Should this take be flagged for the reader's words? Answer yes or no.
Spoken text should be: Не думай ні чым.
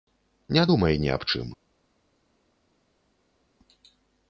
yes